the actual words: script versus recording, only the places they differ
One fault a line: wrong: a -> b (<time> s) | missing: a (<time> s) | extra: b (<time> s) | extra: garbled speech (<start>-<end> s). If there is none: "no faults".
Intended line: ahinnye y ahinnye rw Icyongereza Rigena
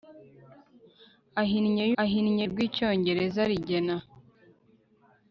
no faults